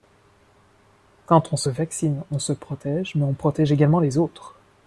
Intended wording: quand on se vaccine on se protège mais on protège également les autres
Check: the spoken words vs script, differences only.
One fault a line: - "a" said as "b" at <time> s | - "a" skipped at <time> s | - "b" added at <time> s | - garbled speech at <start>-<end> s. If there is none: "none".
none